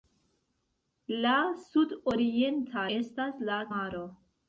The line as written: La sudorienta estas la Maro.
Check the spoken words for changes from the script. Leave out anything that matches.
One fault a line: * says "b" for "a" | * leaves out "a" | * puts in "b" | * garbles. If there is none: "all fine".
all fine